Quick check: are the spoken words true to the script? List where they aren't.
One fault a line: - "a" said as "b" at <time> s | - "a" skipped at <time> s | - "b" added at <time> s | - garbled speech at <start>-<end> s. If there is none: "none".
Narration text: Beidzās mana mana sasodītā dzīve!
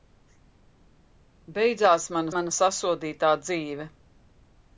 none